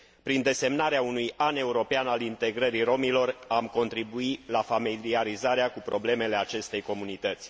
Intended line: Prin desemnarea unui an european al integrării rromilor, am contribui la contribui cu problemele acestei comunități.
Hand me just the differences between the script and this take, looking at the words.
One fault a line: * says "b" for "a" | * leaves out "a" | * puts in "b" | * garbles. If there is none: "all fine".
* says "familiarizarea" for "contribui"